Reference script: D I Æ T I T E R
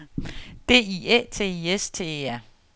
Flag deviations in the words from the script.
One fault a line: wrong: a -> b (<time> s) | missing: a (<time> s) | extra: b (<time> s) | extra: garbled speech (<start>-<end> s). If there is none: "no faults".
extra: S (1.8 s)